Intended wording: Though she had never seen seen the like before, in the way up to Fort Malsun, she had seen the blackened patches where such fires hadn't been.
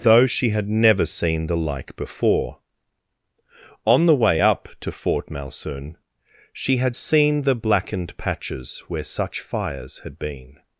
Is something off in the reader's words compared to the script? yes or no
yes